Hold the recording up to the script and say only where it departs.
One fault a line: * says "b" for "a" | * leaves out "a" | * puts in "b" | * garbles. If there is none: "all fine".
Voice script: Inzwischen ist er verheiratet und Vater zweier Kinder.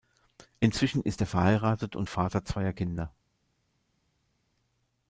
all fine